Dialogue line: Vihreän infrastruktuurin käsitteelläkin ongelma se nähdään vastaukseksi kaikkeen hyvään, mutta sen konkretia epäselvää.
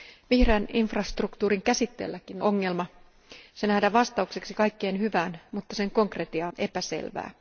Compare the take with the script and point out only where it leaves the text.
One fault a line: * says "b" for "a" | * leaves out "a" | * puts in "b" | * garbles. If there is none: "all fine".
all fine